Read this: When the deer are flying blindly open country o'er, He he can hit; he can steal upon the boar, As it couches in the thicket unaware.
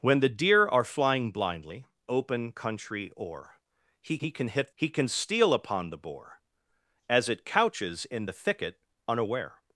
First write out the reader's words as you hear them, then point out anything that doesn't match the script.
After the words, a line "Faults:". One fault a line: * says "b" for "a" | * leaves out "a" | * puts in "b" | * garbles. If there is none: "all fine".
When the deer are flying blindly open country o'er, He he can hit; he can steal upon the boar, As it couches in the thicket unaware.
Faults:
all fine